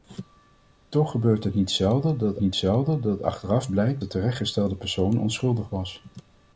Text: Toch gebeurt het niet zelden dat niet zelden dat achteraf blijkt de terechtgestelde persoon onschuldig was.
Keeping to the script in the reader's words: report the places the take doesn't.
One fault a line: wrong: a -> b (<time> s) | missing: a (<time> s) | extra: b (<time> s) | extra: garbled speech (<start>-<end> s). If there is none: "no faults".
no faults